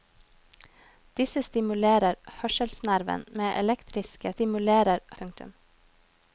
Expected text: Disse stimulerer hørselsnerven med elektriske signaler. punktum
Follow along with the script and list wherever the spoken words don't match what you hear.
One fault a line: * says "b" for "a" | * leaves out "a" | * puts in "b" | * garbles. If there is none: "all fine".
* says "stimulerer" for "signaler"